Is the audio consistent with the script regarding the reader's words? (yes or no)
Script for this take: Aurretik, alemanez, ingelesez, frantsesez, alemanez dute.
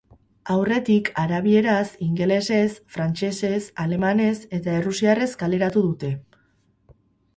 no